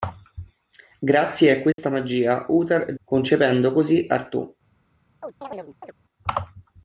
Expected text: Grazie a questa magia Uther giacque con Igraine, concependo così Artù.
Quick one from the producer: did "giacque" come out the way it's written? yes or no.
no